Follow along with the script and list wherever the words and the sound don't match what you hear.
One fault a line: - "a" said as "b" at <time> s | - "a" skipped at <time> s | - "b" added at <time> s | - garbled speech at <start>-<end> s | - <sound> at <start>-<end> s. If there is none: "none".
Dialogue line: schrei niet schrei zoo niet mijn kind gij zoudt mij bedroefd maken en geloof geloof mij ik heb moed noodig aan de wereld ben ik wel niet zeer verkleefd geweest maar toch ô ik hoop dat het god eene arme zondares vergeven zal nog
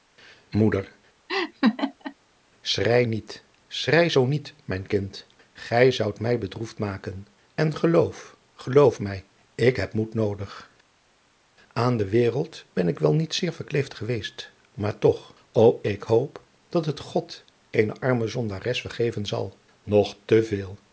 - laugh at 1.3-2.1 s